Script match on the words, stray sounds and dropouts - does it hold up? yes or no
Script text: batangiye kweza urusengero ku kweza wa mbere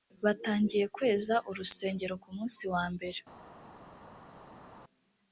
no